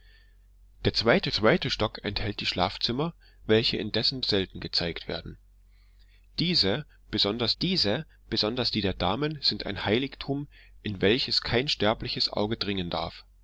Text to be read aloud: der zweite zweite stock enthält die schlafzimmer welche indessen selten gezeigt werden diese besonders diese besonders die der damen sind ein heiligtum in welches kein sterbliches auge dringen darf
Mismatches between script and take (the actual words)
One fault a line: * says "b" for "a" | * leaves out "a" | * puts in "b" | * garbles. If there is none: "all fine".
all fine